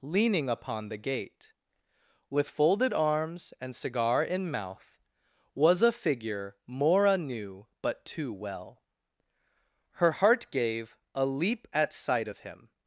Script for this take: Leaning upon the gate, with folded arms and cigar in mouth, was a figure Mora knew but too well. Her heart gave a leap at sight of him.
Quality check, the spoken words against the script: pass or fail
pass